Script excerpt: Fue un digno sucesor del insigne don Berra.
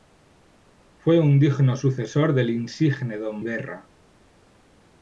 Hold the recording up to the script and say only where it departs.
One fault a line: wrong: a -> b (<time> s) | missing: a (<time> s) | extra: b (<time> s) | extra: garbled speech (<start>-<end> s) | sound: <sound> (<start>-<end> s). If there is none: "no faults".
no faults